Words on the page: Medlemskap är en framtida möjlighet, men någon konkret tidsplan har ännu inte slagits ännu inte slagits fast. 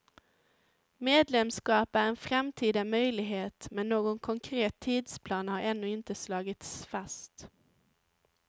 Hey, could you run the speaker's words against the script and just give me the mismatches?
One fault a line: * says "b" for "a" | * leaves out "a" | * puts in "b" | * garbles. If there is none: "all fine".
* leaves out "ännu inte slagits"